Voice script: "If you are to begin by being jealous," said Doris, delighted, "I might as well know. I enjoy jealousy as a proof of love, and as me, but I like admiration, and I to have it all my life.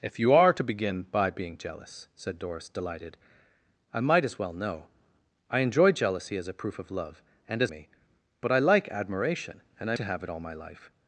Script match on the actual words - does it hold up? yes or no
yes